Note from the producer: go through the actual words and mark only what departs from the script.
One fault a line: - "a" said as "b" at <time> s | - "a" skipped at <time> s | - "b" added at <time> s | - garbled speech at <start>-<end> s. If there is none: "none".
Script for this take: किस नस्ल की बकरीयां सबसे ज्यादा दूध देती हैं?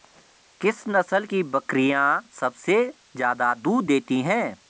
none